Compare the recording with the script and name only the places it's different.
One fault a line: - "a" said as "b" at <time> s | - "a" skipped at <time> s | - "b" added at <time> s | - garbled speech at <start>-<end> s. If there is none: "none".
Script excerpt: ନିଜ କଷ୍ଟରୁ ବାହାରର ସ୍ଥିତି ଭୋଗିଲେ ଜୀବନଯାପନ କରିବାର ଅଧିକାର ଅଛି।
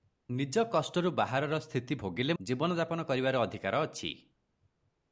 none